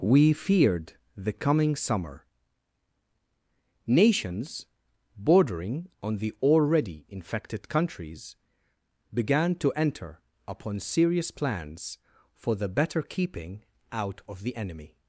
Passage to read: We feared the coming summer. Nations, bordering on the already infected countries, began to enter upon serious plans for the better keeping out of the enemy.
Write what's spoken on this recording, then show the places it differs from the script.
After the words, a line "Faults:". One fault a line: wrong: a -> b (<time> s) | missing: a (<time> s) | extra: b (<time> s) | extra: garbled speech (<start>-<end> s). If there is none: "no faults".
We feared the coming summer. Nations, bordering on the already infected countries, began to enter upon serious plans for the better keeping out of the enemy.
Faults:
no faults